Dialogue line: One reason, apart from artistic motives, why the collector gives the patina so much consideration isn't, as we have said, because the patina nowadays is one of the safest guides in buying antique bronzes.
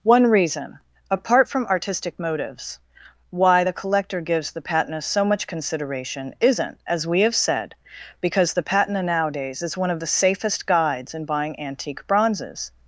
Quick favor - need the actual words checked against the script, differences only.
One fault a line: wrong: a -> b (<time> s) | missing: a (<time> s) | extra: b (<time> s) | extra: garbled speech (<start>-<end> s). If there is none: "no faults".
no faults